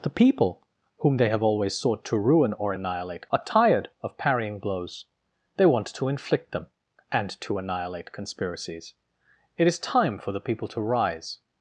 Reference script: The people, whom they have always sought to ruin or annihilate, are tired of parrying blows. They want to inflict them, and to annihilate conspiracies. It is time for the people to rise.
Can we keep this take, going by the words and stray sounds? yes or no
yes